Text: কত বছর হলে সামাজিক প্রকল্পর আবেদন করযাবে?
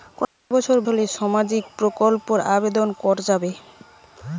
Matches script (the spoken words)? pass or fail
pass